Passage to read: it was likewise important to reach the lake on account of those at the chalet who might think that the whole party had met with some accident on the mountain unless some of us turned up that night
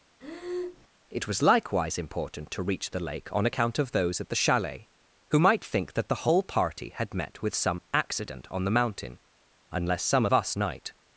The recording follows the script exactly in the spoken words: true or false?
false